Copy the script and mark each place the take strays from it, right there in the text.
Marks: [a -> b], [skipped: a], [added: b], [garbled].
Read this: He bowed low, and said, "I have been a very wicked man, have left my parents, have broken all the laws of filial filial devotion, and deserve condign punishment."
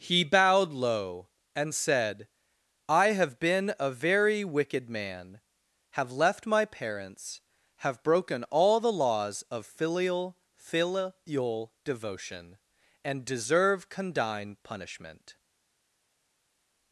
He bowed low, and said, "I have been a very wicked man, have left my parents, have broken all the laws of filial filial devotion, and deserve condign punishment."